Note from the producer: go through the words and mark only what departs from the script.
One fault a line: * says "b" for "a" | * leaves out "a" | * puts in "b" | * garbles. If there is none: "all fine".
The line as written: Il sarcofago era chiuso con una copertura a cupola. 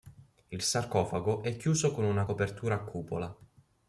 * says "è" for "era"